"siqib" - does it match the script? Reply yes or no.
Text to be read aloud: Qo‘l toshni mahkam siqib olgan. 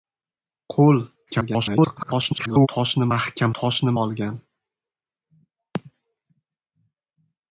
no